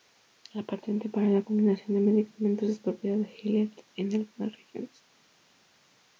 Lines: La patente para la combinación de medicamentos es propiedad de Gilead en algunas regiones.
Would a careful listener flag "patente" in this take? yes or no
no